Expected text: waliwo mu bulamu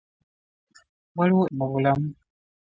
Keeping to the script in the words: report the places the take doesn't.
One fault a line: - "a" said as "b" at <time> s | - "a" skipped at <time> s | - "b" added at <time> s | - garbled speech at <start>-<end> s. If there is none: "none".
none